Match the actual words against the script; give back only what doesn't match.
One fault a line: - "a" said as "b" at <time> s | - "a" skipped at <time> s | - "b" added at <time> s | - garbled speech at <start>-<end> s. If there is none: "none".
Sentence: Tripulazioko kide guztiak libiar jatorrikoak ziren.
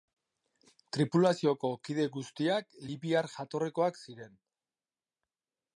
none